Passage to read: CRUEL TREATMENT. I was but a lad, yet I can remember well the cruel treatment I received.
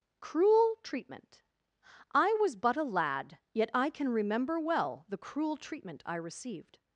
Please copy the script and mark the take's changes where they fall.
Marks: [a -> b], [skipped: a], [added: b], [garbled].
CRUEL TREATMENT. I was but a lad, yet I can remember well the cruel treatment I received.